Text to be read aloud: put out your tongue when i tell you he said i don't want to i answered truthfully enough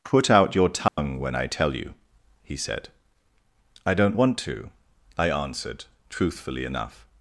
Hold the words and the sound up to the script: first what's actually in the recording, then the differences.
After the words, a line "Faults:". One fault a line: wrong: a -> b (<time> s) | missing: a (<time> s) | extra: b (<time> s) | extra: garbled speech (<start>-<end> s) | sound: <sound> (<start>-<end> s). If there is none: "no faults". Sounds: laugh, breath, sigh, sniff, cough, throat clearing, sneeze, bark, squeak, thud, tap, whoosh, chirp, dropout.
put out your tongue when i tell you he said i don't want to i answered truthfully enough
Faults:
sound: dropout (0.9-1.0 s)